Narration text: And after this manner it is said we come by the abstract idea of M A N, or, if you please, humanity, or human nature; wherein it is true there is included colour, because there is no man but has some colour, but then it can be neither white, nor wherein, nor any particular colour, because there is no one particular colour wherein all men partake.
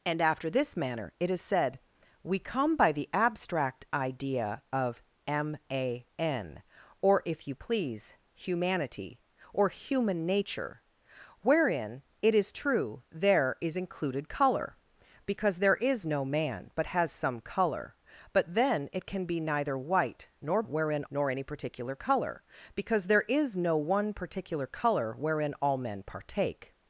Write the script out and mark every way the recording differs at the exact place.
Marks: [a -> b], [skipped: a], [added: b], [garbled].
And after this manner it is said we come by the abstract idea of M A N, or, if you please, humanity, or human nature; wherein it is true there is included colour, because there is no man but has some colour, but then it can be neither white, nor wherein, nor any particular colour, because there is no one particular colour wherein all men partake.